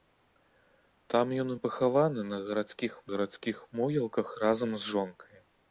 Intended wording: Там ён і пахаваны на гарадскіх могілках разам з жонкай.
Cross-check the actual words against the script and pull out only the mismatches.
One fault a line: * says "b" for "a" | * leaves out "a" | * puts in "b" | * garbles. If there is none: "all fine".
* puts in "гарадскіх"